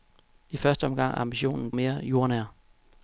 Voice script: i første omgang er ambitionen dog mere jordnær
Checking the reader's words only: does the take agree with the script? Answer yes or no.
no